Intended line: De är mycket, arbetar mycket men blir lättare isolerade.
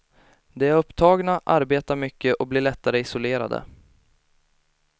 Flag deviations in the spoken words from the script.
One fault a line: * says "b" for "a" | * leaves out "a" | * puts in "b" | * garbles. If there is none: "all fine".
* says "upptagna" for "mycket"
* says "och" for "men"